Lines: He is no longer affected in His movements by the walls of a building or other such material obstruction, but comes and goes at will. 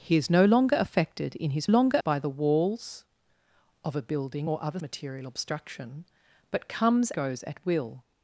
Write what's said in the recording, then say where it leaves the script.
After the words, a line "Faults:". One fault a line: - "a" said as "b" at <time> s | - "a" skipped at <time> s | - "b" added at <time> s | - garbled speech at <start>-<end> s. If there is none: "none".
He is no longer affected in His longer by the walls of a building or other material obstruction, but comes goes at will.
Faults:
- "movements" said as "longer" at 1.7 s
- "such" skipped at 4.8 s
- "and" skipped at 7.1 s